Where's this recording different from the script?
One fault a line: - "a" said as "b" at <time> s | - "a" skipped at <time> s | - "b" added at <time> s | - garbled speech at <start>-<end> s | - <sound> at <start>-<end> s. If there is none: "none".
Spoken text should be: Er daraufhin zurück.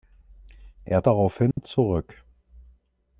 - dropout at 1.5-1.6 s